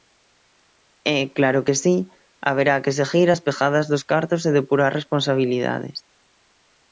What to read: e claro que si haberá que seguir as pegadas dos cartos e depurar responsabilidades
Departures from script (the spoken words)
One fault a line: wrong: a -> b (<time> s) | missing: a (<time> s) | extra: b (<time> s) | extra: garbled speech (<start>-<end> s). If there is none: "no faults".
no faults